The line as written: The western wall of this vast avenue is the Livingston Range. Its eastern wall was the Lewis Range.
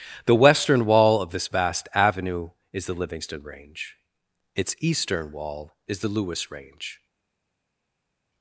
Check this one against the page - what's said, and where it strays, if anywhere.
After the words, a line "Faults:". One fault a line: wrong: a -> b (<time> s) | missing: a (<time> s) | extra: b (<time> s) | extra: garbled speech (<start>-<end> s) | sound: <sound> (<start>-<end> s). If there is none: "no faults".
The western wall of this vast avenue is the Livingston Range. Its eastern wall is the Lewis Range.
Faults:
wrong: was -> is (5.9 s)